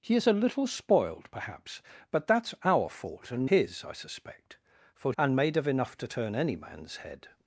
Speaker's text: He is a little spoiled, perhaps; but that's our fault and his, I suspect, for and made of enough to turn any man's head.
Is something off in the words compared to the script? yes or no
no